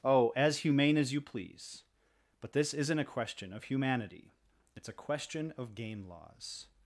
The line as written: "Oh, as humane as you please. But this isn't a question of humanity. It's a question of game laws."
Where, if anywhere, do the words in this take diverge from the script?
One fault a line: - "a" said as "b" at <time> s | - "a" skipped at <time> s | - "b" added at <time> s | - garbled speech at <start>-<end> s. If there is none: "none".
none